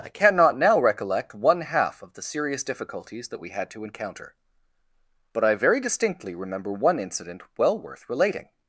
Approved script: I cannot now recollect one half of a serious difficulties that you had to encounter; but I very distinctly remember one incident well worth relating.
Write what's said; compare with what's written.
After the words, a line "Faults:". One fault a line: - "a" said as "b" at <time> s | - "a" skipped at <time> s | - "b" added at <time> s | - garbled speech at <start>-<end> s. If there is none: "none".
I cannot now recollect one half of the serious difficulties that we had to encounter; but I very distinctly remember one incident well worth relating.
Faults:
- "a" said as "the" at 2.1 s
- "you" said as "we" at 3.4 s